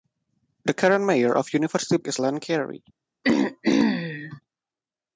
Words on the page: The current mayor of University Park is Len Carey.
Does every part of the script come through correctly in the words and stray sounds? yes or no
no